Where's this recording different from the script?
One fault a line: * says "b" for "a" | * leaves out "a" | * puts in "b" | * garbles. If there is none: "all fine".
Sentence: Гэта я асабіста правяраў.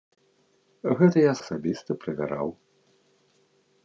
all fine